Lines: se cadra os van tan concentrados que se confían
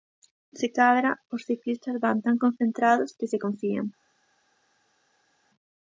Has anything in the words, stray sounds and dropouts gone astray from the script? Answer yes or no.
yes